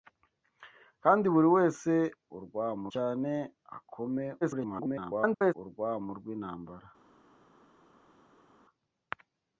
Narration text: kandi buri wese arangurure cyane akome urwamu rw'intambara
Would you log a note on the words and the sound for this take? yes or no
yes